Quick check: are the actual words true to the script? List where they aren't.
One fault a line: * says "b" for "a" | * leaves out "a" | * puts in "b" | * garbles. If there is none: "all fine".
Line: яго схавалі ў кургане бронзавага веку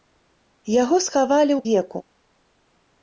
* leaves out "кургане бронзавага"